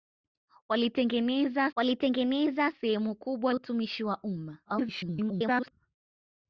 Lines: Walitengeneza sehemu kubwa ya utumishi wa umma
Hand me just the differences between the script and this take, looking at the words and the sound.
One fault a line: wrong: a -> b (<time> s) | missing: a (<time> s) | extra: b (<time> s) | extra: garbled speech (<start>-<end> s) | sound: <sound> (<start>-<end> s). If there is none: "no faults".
extra: walitengeneza (1.7 s)
missing: ya (3.5 s)
extra: garbled speech (4.6-5.7 s)